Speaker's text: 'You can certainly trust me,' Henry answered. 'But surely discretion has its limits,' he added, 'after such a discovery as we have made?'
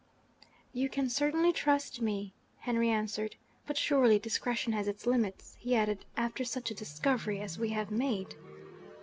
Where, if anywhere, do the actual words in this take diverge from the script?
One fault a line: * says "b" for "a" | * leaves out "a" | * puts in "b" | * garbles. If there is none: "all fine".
all fine